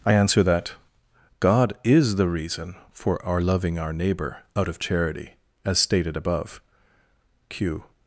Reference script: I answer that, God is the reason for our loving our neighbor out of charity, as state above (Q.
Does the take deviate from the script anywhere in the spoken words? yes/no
yes